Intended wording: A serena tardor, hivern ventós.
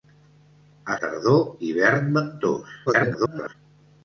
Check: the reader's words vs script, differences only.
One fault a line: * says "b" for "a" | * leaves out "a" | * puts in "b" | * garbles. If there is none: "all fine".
* leaves out "serena"
* garbles